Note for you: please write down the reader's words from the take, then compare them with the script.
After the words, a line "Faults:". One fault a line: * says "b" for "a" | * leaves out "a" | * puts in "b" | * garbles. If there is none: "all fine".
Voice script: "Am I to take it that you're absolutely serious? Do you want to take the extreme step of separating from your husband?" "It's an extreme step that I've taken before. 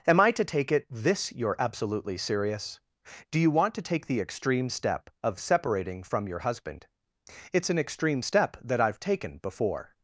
"Am I to take it this you're absolutely serious? Do you want to take the extreme step of separating from your husband?" "It's an extreme step that I've taken before.
Faults:
* says "this" for "that"